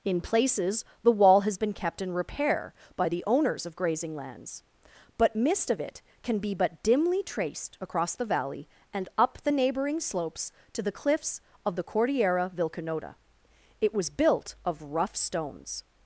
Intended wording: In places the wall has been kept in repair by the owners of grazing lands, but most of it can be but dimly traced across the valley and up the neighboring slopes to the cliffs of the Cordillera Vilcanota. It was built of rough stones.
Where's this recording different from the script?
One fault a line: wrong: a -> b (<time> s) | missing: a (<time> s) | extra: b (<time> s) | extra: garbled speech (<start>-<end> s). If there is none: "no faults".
wrong: most -> mist (5.3 s)